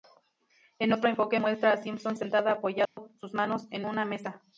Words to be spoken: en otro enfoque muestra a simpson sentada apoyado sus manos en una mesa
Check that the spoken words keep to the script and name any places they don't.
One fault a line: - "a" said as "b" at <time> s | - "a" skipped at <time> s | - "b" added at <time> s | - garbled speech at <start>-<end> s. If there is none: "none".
none